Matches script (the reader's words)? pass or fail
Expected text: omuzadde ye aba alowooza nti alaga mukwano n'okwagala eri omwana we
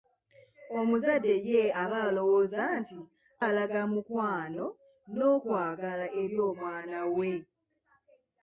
pass